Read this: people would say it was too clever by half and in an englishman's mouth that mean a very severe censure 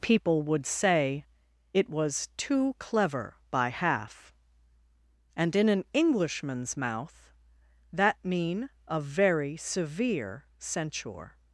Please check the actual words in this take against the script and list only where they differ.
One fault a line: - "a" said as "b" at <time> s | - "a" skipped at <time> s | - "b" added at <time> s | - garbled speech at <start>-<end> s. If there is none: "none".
none